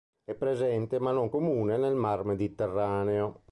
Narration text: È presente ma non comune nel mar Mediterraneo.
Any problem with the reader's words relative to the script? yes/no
no